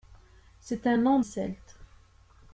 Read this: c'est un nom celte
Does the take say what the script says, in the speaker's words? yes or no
yes